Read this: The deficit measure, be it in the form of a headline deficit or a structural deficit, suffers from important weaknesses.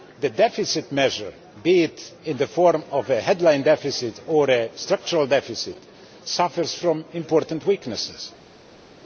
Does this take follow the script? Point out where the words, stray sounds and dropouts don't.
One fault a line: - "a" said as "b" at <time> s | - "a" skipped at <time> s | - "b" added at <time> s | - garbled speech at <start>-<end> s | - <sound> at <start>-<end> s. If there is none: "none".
none